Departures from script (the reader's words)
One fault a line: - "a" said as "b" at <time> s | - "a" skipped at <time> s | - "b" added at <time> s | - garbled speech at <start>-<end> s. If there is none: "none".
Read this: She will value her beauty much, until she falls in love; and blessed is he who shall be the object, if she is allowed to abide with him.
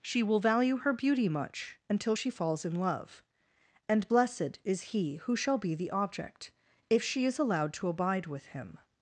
none